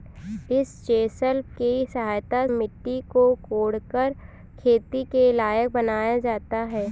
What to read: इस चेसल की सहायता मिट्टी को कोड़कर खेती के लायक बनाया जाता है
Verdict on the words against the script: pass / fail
pass